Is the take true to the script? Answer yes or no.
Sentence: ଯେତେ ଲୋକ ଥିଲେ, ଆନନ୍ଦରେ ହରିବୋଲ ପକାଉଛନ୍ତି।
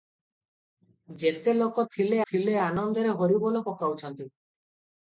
no